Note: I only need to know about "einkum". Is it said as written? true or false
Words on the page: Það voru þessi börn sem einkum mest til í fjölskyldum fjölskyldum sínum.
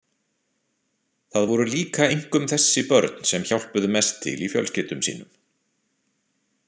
false